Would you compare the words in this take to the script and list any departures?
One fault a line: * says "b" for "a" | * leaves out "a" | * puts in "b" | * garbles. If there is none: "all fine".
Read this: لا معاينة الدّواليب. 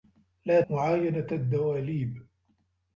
all fine